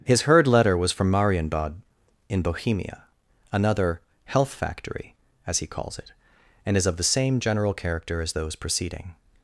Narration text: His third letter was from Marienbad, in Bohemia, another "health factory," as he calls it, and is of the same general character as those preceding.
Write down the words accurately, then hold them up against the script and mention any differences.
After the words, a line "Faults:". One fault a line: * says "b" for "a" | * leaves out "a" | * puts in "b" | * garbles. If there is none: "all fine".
His heard letter was from Marienbad, in Bohemia, another "health factory," as he calls it, and is of the same general character as those preceding.
Faults:
* says "heard" for "third"